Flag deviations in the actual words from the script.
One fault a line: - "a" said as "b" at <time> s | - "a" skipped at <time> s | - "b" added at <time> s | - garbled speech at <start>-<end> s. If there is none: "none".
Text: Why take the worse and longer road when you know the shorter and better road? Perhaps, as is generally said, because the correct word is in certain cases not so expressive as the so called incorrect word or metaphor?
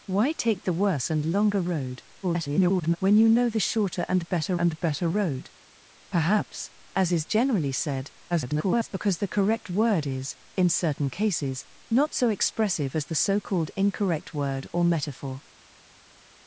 - garbled speech at 2.2-3.0 s
- "and better" added at 4.6 s
- garbled speech at 8.3-8.9 s